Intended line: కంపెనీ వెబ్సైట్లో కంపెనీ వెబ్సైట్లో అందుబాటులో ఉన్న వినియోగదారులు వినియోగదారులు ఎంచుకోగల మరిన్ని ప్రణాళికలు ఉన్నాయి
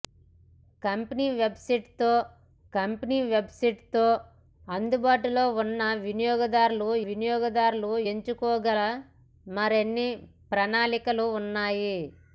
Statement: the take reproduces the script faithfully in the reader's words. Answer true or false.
true